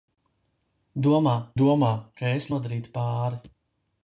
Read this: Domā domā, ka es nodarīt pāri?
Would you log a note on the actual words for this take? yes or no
no